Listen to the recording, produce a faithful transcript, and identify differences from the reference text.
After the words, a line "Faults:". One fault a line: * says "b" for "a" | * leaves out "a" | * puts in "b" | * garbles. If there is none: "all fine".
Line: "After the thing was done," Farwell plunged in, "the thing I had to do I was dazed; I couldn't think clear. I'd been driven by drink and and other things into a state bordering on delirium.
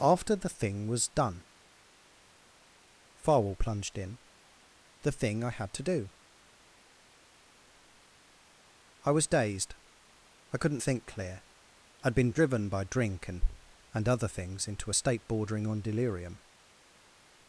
"After the thing was done," Farwell plunged in, "the thing I had to do I was dazed; I couldn't think clear. I'd been driven by drink and and other things into a state bordering on delirium.
Faults:
all fine